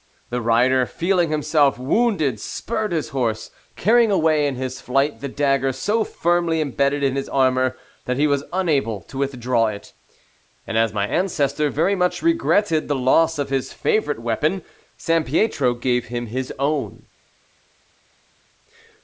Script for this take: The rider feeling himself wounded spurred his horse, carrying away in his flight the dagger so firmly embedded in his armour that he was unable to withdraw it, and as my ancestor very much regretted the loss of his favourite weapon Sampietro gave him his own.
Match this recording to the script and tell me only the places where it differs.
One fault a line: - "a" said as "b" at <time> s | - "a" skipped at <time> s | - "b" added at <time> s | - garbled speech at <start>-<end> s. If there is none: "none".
none